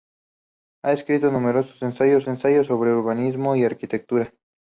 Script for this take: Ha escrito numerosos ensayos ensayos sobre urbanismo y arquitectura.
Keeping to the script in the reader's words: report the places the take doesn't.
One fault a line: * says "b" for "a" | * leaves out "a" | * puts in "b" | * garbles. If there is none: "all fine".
all fine